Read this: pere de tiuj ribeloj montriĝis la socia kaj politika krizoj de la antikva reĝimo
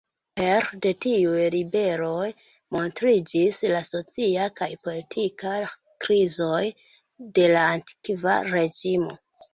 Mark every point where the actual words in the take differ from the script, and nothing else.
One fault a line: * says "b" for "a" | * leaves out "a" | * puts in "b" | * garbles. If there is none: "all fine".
all fine